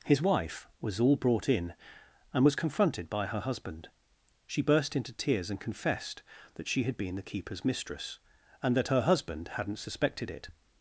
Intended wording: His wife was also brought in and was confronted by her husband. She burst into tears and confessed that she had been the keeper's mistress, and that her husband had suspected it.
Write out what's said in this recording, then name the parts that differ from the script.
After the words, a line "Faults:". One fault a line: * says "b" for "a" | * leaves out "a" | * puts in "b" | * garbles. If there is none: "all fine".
His wife was all brought in and was confronted by her husband. She burst into tears and confessed that she had been the keeper's mistress, and that her husband hadn't suspected it.
Faults:
* says "all" for "also"
* says "hadn't" for "had"